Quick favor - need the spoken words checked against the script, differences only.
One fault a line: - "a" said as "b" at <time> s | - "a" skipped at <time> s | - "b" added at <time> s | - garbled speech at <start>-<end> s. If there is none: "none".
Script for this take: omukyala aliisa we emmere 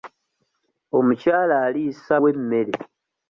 none